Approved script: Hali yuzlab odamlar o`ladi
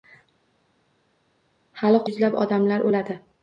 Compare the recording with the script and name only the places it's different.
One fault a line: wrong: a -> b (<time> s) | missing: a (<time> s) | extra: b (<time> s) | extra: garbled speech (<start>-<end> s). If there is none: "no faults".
no faults